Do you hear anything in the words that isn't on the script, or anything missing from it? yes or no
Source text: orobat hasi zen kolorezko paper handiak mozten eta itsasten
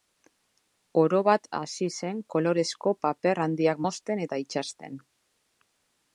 no